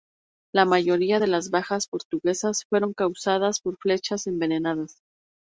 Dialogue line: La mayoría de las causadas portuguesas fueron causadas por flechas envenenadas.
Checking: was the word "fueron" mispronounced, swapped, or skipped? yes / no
no